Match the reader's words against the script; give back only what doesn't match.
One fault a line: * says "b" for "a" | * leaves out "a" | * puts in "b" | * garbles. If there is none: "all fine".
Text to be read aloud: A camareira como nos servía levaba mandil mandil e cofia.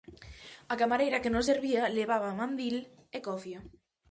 * says "que" for "como"
* leaves out "mandil"